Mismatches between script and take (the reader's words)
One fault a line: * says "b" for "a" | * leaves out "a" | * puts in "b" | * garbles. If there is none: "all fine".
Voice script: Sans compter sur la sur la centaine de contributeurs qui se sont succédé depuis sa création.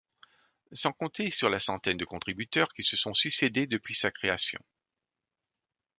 * leaves out "sur la"